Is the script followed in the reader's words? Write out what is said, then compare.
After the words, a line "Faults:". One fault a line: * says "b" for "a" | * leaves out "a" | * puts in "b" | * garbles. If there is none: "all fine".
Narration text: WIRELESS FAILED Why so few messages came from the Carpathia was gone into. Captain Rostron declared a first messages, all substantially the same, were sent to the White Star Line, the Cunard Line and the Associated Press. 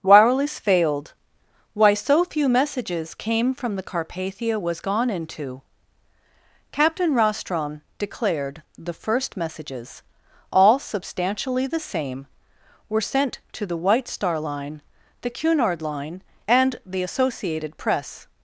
WIRELESS FAILED Why so few messages came from the Carpathia was gone into. Captain Rostron declared the first messages, all substantially the same, were sent to the White Star Line, the Cunard Line and the Associated Press.
Faults:
* says "the" for "a"